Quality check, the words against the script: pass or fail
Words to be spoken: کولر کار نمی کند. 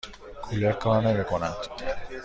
pass